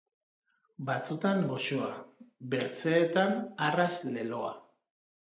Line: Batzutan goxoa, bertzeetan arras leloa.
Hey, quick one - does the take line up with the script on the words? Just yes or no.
yes